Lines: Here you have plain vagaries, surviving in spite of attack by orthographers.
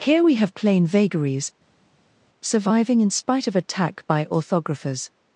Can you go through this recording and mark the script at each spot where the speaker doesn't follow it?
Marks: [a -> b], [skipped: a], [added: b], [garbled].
Here [you -> we] have plain vagaries, surviving in spite of attack by orthographers.